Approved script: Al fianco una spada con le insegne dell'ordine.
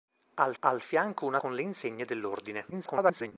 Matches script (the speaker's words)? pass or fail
fail